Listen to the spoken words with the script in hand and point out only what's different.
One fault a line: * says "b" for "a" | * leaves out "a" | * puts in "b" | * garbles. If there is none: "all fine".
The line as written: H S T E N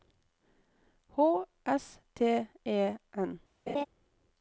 all fine